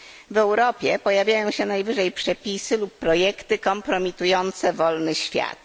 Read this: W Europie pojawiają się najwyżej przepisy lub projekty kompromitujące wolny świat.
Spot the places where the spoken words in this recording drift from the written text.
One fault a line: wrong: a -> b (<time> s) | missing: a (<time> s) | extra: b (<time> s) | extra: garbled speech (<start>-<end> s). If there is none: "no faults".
no faults